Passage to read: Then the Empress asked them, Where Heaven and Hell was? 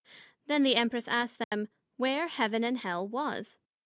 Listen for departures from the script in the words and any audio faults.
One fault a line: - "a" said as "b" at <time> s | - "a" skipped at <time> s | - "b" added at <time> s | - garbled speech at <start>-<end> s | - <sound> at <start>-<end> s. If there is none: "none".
- dropout at 1.4-1.5 s